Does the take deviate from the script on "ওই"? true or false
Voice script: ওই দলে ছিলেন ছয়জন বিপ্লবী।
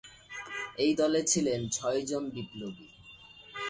true